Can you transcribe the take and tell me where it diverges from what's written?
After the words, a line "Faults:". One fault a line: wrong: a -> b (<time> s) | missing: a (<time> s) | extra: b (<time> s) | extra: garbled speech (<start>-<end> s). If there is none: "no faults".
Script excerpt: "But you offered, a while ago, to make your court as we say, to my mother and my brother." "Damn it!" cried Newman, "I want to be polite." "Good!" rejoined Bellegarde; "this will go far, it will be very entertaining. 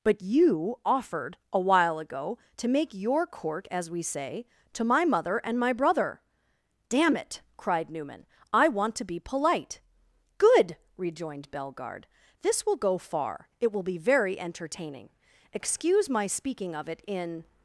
"But you offered, a while ago, to make your court as we say, to my mother and my brother." "Damn it!" cried Newman, "I want to be polite." "Good!" rejoined Bellegarde; "this will go far, it will be very entertaining. Excuse my speaking of it in
Faults:
extra: Excuse my speaking of it in (15.5 s)